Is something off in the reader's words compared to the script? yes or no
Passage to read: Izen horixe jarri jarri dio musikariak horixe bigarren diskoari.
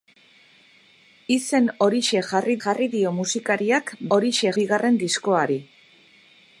no